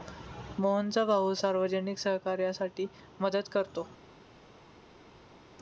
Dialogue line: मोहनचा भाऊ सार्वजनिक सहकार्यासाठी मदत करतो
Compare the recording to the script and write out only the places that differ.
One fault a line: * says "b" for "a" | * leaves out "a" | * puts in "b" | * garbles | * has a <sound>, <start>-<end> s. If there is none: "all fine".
all fine